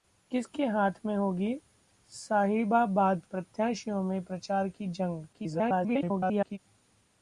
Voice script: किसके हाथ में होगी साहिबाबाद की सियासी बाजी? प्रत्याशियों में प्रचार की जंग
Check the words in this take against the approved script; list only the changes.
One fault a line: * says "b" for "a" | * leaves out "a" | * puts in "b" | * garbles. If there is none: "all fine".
* leaves out "की सियासी बाजी"
* garbles